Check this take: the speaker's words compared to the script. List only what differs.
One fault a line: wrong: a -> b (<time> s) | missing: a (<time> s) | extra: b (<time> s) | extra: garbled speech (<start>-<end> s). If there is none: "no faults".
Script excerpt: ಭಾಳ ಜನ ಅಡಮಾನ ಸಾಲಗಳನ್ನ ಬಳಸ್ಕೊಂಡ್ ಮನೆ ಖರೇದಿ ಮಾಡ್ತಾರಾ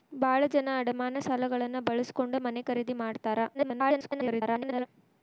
extra: garbled speech (3.5-4.9 s)